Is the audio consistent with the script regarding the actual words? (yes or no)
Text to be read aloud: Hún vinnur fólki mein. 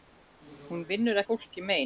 yes